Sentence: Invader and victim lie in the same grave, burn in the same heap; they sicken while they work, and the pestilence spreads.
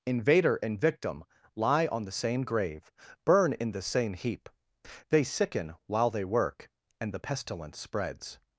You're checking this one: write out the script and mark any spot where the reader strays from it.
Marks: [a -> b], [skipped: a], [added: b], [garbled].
Invader and victim lie [in -> on] the same grave, burn in the same heap; they sicken while they work, and the pestilence spreads.